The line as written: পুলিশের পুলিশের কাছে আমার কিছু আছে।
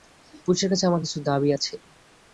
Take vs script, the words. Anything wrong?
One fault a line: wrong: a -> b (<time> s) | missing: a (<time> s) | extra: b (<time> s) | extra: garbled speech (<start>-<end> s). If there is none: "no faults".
missing: পুলিশের (0.7 s)
extra: দাবি (1.3 s)